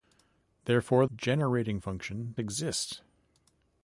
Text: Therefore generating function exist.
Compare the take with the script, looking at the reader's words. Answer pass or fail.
pass